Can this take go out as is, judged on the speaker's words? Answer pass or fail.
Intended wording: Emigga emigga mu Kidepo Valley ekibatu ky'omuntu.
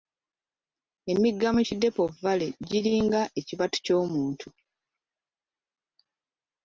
fail